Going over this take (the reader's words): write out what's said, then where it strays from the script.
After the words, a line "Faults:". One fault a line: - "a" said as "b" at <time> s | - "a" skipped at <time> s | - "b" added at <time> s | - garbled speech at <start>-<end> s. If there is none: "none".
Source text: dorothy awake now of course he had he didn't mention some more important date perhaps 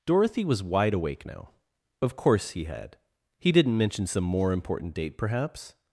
dorothy was wide awake now of course he had he didn't mention some more important date perhaps
Faults:
- "was wide" added at 0.5 s